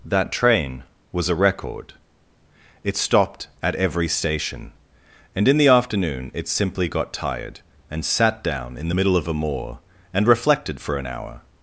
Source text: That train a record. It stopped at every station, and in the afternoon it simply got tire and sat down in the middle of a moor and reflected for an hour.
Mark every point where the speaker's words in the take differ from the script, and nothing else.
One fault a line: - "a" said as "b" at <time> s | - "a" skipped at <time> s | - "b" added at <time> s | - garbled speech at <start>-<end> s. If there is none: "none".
- "was" added at 1.1 s
- "tire" said as "tired" at 7.1 s